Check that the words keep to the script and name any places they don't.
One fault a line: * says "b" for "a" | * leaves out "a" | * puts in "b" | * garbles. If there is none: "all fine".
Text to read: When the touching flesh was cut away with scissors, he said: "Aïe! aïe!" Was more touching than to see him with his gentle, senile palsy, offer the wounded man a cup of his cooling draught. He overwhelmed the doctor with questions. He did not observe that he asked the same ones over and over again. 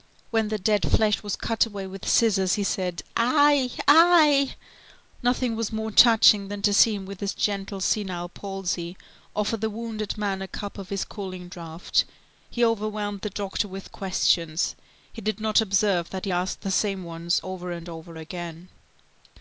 * says "dead" for "touching"
* puts in "Nothing"